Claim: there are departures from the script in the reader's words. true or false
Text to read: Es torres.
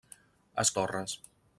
false